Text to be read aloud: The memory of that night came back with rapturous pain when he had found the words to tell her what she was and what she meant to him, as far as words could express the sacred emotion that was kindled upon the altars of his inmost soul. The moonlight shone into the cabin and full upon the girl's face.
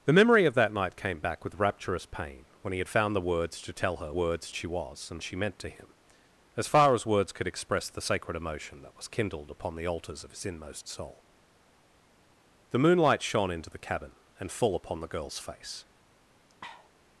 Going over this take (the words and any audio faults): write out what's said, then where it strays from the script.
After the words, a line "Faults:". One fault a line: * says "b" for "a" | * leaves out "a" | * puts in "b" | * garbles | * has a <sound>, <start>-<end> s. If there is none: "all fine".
The memory of that night came back with rapturous pain when he had found the words to tell her words she was and she meant to him, as far as words could express the sacred emotion that was kindled upon the altars of his inmost soul. The moonlight shone into the cabin and full upon the girl's face.
Faults:
* says "words" for "what"
* leaves out "what"
* has a sniff, 16.5-16.9 s